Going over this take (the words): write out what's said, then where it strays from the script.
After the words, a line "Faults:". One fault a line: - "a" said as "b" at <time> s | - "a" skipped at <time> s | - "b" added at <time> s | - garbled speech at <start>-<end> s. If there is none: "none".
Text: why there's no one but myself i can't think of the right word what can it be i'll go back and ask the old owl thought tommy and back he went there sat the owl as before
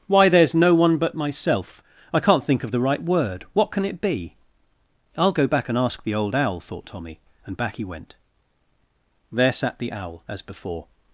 why there's no one but myself i can't think of the right word what can it be i'll go back and ask the old owl thought tommy and back he went there sat the owl as before
Faults:
none